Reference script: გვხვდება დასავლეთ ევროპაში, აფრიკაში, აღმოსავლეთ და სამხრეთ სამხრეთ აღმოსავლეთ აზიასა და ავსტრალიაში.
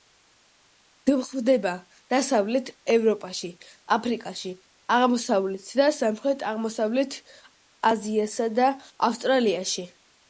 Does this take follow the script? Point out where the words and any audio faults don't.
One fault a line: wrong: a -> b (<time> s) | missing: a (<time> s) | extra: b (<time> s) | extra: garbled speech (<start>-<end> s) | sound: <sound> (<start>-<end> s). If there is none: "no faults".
missing: სამხრეთ (6.5 s)